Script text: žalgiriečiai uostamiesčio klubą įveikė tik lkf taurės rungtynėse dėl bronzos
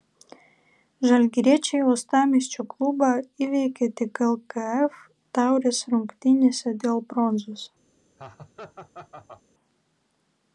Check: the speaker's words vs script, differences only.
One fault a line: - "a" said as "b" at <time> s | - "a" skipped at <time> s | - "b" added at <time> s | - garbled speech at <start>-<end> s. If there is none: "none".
none